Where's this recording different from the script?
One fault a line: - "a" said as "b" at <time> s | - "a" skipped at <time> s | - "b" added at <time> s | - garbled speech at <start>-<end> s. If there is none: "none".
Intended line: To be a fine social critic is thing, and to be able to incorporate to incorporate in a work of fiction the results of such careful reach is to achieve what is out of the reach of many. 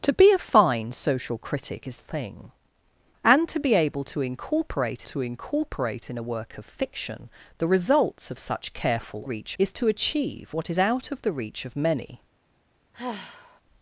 none